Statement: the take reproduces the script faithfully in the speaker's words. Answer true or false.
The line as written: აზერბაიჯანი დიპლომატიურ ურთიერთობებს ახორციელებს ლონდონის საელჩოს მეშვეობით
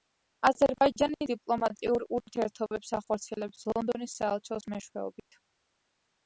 true